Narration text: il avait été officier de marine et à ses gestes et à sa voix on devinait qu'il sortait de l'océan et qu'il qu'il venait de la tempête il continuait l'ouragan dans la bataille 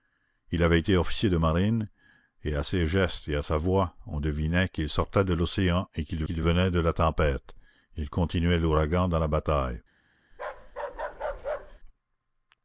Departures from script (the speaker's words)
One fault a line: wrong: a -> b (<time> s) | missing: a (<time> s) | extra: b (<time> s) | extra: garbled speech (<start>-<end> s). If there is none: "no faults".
no faults